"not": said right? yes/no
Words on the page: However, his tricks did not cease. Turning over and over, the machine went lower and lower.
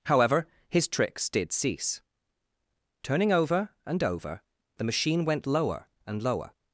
no